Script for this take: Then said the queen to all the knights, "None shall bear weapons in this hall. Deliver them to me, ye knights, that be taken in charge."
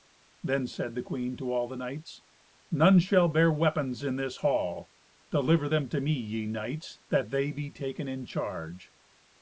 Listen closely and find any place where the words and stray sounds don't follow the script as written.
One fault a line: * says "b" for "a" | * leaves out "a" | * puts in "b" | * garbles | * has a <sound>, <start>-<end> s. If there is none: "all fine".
* puts in "they"